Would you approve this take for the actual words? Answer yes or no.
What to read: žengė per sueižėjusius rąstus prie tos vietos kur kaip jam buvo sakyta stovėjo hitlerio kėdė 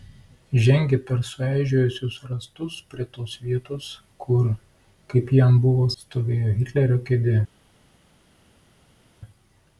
no